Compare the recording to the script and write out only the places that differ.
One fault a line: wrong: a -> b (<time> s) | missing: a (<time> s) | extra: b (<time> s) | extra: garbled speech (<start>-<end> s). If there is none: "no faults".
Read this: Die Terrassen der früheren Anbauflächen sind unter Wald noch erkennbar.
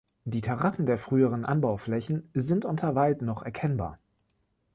no faults